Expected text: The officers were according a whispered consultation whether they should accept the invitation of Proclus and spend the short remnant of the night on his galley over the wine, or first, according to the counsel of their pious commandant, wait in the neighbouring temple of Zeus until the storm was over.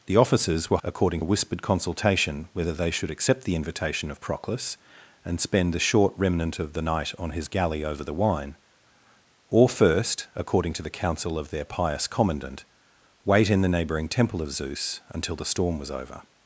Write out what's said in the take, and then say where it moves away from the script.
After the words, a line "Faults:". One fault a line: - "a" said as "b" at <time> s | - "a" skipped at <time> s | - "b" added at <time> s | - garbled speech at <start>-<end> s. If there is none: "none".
The officers were according a whispered consultation whether they should accept the invitation of Proclus and spend the short remnant of the night on his galley over the wine, or first, according to the counsel of their pious commandant, wait in the neighbouring temple of Zeus until the storm was over.
Faults:
none